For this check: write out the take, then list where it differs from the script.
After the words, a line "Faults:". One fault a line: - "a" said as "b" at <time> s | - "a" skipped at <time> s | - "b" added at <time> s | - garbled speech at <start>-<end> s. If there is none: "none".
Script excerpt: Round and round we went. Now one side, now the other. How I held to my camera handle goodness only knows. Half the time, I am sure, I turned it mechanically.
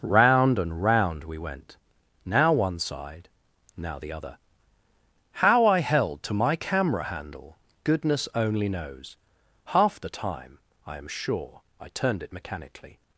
Round and round we went. Now one side, now the other. How I held to my camera handle goodness only knows. Half the time, I am sure, I turned it mechanically.
Faults:
none